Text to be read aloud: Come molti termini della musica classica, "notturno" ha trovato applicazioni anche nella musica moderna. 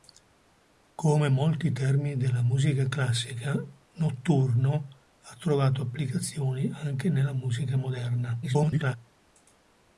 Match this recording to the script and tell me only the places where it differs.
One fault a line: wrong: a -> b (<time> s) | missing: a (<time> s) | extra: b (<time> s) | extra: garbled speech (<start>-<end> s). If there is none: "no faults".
extra: garbled speech (8.4-9.0 s)